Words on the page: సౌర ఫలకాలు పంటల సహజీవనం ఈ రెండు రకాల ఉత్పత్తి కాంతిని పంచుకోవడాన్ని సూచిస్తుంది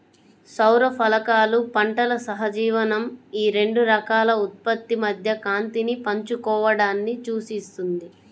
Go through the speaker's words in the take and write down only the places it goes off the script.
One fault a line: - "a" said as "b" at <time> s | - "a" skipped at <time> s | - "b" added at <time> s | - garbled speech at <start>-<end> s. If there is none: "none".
- "మధ్య" added at 5.0 s